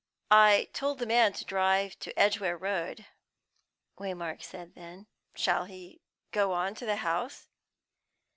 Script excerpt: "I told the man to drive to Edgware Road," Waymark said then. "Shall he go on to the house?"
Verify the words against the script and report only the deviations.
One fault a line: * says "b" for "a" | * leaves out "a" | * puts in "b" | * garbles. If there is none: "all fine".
all fine